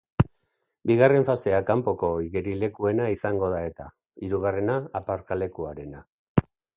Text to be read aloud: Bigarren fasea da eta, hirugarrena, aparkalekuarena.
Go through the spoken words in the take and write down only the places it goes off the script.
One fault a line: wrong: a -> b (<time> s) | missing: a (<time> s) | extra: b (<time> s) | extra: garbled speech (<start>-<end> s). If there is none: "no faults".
extra: kanpoko igerilekuena izango (1.7 s)